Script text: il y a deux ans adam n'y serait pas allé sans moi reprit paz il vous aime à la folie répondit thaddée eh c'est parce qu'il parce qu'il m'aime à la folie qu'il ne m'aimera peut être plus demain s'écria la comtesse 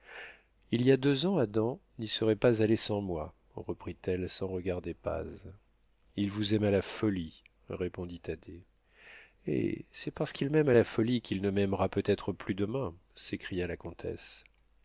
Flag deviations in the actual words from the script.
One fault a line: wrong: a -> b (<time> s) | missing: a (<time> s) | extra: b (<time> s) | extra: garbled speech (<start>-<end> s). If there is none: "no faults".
extra: elle sans regarder (4.1 s)
missing: parce qu'il (10.5 s)